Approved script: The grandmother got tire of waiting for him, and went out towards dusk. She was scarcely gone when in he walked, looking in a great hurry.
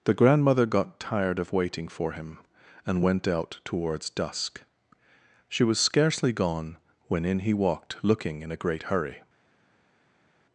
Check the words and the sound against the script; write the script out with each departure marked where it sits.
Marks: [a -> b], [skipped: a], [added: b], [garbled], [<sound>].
The grandmother got [tire -> tired] of waiting for him, and went out towards dusk. She was scarcely gone when in he walked, looking in a great hurry.